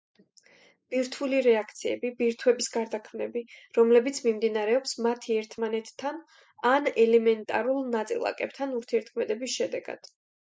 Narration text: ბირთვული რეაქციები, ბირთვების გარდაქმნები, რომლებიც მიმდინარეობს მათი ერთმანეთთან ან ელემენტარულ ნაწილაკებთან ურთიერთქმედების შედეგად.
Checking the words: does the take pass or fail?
pass